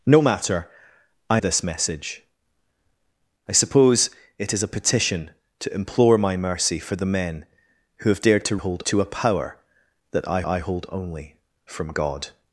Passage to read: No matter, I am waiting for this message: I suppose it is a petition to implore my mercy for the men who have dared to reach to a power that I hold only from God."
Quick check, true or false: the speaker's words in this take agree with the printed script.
false